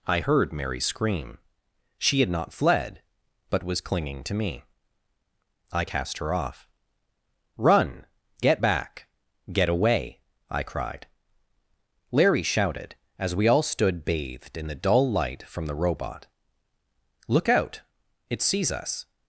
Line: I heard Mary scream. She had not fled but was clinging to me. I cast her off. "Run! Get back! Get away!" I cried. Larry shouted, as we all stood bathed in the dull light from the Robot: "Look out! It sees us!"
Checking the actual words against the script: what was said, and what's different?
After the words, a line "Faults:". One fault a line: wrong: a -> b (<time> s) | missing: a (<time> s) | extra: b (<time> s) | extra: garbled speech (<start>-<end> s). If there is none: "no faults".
I heard Mary scream. She had not fled but was clinging to me. I cast her off. "Run! Get back! Get away!" I cried. Larry shouted, as we all stood bathed in the dull light from the Robot: "Look out! It sees us!"
Faults:
no faults